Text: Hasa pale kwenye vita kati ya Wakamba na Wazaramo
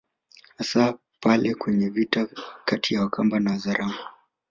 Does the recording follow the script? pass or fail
pass